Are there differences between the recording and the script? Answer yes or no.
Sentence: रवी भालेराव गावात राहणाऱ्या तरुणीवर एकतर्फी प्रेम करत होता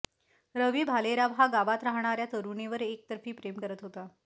yes